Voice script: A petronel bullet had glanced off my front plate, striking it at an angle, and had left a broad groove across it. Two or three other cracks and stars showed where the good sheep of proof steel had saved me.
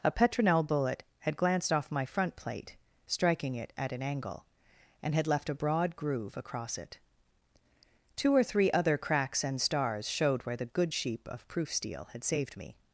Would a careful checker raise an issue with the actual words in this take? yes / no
no